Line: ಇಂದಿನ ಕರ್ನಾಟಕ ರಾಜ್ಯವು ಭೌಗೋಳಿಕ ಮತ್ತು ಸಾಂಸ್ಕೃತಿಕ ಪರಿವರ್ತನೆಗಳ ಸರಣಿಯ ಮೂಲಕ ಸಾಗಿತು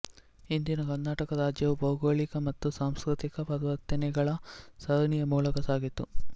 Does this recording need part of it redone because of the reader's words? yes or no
no